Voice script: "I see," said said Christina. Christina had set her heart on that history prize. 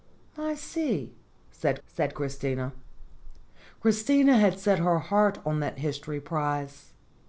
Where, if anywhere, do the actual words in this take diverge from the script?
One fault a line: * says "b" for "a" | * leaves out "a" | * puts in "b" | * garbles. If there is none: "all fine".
all fine